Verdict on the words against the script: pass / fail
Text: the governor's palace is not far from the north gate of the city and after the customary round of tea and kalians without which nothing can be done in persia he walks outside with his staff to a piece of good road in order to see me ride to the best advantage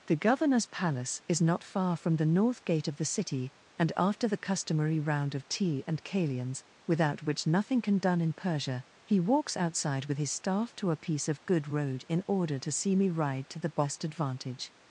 fail